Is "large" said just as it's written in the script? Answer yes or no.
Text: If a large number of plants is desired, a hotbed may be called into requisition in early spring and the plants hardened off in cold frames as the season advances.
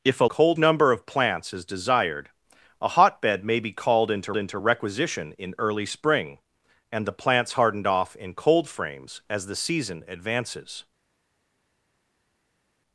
no